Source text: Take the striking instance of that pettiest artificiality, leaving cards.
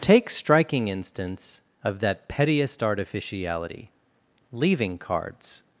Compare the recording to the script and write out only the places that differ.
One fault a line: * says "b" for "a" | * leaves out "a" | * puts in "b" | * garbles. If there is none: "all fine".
* leaves out "the"